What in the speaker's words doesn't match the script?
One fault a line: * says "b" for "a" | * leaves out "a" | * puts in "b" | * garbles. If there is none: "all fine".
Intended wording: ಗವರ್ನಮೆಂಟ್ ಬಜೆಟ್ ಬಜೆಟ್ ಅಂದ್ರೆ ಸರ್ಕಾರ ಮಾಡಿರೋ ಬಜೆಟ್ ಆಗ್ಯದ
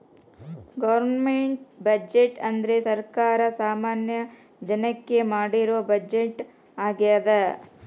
* leaves out "ಬಜೆಟ್"
* puts in "ಸಾಮಾನ್ಯ ಜನಕ್ಕೆ"